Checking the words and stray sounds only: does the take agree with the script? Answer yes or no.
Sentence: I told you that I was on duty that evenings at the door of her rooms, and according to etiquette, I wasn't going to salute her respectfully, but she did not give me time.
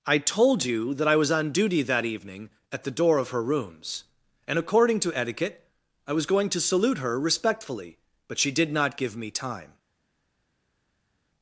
no